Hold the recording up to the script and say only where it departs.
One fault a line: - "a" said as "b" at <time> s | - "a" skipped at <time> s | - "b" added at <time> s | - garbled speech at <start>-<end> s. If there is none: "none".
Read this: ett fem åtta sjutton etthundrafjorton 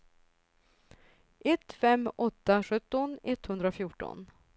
none